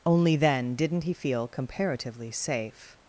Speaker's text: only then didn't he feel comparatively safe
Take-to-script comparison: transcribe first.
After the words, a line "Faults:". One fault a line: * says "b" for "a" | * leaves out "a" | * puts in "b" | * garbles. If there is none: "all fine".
only then didn't he feel comparatively safe
Faults:
all fine